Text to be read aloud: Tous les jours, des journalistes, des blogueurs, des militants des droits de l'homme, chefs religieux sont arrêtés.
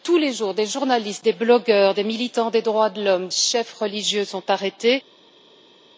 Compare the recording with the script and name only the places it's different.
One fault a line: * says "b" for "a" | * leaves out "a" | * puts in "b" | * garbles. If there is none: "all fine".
all fine